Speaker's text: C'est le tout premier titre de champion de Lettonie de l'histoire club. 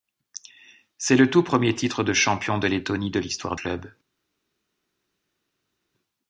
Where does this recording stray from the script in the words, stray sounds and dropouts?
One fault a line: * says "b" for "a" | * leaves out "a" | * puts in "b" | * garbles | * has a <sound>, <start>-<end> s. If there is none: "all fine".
all fine